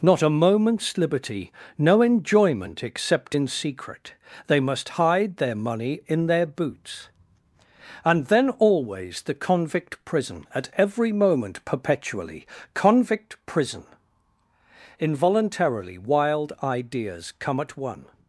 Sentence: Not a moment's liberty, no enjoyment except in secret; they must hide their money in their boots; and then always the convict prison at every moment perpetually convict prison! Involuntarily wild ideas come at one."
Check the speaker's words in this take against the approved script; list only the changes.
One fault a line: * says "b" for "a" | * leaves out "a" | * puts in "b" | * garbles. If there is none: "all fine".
all fine